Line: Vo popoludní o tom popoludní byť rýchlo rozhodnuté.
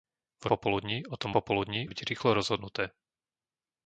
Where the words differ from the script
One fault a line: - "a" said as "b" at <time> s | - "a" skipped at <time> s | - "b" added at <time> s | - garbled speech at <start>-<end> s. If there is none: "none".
none